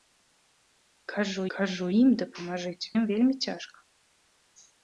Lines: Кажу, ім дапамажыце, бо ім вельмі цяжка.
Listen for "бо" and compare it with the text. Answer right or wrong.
wrong